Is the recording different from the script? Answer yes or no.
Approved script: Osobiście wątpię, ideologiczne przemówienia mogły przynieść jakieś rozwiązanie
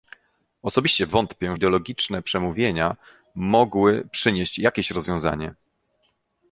no